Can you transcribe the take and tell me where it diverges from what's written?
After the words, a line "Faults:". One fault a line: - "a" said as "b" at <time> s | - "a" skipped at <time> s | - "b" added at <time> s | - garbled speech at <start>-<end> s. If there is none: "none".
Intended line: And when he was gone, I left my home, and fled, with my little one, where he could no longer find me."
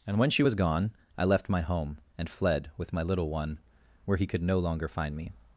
And when she was gone, I left my home, and fled, with my little one, where he could no longer find me."
Faults:
- "he" said as "she" at 0.3 s